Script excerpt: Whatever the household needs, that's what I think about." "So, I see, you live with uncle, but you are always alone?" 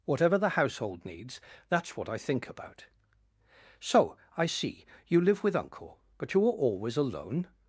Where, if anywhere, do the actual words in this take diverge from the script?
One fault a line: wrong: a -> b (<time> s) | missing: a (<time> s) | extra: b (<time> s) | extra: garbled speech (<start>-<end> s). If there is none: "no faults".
no faults